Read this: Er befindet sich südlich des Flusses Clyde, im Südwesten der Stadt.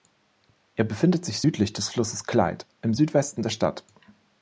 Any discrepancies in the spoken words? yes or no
no